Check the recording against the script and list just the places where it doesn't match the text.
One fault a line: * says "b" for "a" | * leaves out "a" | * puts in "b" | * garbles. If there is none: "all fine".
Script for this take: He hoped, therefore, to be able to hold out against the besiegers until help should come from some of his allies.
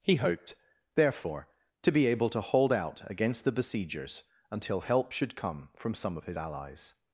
all fine